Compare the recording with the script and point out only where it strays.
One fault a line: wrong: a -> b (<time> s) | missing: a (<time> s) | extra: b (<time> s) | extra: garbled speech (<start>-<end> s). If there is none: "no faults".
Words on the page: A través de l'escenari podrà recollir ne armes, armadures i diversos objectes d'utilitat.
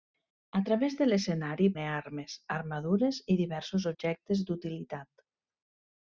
missing: podrà recollir (1.7 s)